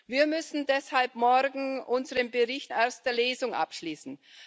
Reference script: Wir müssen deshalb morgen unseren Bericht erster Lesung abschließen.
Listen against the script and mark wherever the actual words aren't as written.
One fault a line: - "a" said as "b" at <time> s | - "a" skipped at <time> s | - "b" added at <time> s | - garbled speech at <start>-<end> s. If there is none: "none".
none